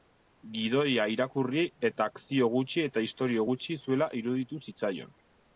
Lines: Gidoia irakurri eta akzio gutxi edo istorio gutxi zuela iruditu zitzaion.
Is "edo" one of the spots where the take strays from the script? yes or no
yes